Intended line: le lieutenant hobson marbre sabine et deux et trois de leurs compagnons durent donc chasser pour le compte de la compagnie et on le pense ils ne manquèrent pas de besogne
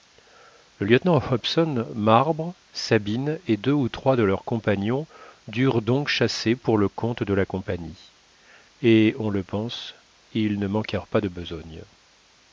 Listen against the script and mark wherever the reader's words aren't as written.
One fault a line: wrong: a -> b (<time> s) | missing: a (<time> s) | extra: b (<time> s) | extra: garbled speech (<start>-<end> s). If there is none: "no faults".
wrong: et -> ou (3.7 s)